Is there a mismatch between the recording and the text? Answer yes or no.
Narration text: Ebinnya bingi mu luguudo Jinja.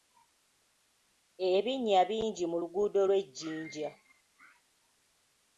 yes